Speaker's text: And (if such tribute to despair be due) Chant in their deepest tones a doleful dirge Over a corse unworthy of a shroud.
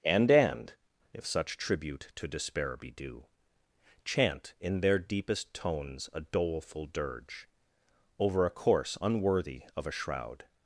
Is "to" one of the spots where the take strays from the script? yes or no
no